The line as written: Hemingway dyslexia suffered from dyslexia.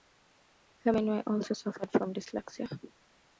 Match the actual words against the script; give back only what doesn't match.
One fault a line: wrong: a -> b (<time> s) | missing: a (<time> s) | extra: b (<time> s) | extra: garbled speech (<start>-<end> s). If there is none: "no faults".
wrong: dyslexia -> also (1.3 s)